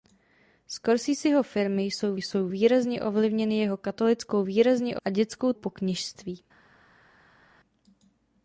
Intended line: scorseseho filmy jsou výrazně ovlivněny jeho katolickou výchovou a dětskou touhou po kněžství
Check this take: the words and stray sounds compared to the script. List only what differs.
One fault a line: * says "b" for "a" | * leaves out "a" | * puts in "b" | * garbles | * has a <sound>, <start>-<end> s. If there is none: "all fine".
* puts in "jsou"
* says "výrazně" for "výchovou"
* leaves out "touhou"